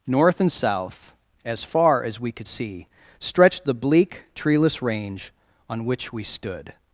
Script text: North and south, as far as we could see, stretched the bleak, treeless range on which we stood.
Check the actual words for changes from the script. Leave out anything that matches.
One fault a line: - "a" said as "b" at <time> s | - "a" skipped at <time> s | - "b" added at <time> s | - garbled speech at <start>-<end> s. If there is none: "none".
none